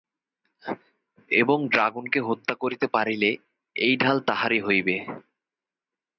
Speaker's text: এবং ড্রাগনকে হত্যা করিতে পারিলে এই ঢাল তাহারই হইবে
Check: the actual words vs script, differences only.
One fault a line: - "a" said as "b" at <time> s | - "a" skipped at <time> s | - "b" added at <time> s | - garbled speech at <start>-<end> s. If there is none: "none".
none